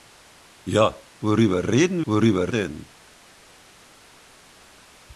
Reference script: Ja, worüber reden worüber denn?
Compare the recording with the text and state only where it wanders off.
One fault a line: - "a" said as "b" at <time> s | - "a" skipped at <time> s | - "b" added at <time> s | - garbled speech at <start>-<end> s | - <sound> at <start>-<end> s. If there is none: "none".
none